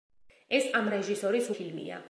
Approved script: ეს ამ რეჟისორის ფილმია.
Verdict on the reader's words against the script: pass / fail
pass